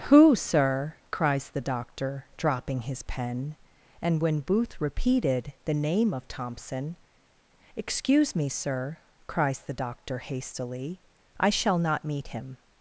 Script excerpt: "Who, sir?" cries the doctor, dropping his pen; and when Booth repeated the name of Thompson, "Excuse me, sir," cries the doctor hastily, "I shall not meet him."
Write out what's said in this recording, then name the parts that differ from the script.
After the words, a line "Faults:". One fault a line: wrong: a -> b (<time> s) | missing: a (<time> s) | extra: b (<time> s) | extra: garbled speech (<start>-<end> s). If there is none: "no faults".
"Who, sir?" cries the doctor, dropping his pen; and when Booth repeated the name of Thompson, "Excuse me, sir," cries the doctor hastily, "I shall not meet him."
Faults:
no faults